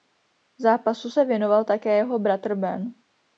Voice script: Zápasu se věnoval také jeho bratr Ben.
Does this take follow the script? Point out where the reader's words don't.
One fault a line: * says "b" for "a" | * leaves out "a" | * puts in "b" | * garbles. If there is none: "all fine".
all fine